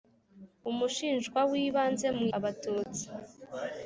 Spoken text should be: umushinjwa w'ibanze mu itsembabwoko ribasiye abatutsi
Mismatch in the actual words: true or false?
true